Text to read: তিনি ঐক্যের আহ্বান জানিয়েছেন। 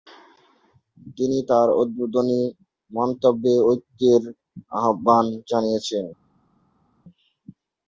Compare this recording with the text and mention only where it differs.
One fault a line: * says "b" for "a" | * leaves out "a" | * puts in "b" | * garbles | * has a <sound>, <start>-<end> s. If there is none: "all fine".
* puts in "তার উদ্বোধনী মন্তব্যে"